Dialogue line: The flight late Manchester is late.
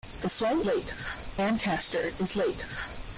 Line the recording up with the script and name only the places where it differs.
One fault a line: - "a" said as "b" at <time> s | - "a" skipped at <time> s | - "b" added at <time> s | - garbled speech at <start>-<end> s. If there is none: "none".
none